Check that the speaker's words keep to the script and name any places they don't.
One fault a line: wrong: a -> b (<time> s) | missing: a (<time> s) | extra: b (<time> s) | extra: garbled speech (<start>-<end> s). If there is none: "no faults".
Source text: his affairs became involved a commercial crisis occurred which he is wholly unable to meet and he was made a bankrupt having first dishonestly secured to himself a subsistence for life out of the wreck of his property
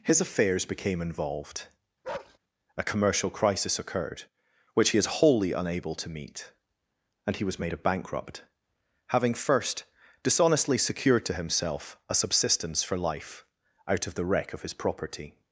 no faults